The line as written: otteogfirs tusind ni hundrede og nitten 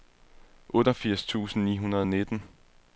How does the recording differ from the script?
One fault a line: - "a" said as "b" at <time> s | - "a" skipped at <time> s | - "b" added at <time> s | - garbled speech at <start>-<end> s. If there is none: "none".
none